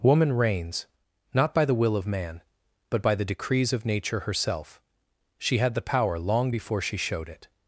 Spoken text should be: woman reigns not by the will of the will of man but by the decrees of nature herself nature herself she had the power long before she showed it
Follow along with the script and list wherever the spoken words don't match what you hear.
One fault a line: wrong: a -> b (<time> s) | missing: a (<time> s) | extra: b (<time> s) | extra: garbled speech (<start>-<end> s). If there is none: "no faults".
missing: the will of (2.1 s)
missing: nature herself (4.8 s)